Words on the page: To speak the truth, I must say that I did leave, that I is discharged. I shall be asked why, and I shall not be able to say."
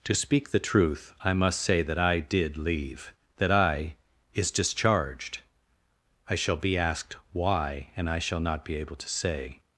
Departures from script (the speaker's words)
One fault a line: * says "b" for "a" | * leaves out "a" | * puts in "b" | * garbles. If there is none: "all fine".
all fine